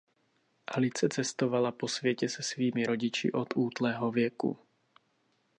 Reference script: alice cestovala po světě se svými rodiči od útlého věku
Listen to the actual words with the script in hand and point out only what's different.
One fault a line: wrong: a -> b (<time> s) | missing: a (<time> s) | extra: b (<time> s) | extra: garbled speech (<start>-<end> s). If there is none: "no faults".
no faults